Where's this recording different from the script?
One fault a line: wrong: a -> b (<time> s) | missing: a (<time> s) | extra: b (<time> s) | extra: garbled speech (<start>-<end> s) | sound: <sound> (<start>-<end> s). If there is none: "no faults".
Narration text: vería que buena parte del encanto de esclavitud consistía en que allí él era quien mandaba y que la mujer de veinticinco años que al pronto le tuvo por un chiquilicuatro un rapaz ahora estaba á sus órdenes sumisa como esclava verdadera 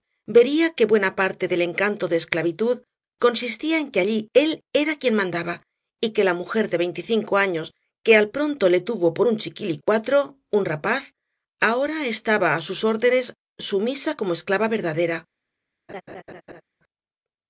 sound: laugh (15.9-16.6 s)